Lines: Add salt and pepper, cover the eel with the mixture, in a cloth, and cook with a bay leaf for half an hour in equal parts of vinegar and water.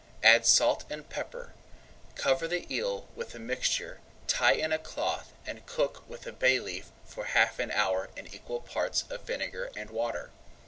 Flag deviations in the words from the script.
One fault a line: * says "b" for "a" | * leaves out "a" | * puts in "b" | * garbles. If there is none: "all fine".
* puts in "tie"